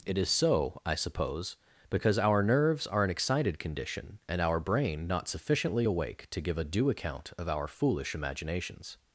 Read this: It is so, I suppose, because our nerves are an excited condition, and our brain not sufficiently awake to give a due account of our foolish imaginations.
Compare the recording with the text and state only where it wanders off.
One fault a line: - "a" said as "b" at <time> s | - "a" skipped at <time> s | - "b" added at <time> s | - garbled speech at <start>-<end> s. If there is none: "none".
none